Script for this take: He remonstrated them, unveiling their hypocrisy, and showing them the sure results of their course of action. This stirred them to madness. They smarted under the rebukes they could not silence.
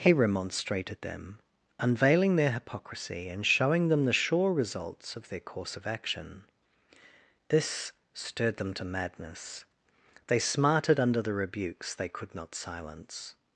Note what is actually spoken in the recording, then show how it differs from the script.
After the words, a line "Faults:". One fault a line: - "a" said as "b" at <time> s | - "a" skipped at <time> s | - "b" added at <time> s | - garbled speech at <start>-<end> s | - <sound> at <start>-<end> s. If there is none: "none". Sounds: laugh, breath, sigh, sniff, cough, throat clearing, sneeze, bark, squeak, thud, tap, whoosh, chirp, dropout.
He remonstrated them, unveiling their hypocrisy, and showing them the sure results of their course of action. This stirred them to madness. They smarted under the rebukes they could not silence.
Faults:
none